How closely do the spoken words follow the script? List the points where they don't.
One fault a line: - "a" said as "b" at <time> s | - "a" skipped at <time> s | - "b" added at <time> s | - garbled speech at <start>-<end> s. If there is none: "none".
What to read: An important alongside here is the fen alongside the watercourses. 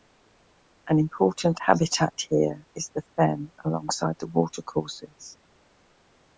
- "alongside" said as "habitat" at 1.6 s